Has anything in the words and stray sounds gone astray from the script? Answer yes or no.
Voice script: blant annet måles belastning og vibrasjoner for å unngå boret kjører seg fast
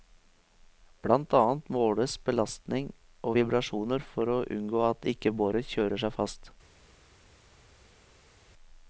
yes